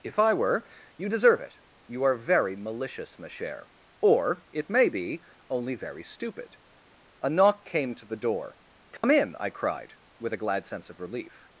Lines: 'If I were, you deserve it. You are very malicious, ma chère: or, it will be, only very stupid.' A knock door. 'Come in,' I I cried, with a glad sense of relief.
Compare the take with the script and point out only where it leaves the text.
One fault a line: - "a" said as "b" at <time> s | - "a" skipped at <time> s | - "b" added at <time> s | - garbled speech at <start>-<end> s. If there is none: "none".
- "will" said as "may" at 4.7 s
- "came to the" added at 7.7 s
- "I" skipped at 9.5 s